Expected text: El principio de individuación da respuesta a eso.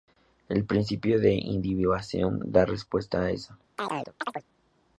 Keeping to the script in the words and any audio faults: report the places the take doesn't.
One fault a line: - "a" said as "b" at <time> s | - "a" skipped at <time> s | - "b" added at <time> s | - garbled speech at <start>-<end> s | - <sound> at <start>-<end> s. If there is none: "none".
- chirp at 3.8-4.4 s